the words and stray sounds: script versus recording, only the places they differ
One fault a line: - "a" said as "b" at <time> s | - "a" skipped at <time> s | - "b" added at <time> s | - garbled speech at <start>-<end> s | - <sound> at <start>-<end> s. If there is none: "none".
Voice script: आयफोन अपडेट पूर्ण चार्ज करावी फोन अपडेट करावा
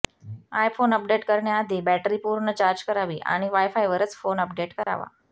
- "करण्याआधी बॅटरी" added at 1.2 s
- "आणि वायफायवरच" added at 3.3 s
- dropout at 4.8-4.9 s